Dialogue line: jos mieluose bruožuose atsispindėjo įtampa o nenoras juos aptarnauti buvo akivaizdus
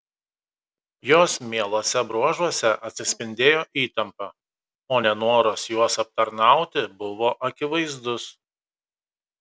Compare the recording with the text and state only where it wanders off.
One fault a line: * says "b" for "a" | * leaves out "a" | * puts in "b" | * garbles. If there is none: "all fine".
all fine